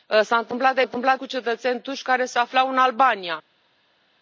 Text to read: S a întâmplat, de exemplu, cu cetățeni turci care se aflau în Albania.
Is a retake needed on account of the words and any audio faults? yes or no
yes